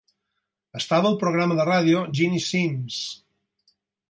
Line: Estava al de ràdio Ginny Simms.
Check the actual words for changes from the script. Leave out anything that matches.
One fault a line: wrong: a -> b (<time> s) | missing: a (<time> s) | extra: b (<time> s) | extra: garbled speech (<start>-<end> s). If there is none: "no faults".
extra: programa (1.2 s)